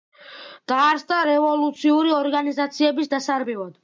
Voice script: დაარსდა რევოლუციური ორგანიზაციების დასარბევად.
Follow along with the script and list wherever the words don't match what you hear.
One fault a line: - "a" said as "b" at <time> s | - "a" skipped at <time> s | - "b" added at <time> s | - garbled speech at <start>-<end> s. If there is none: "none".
none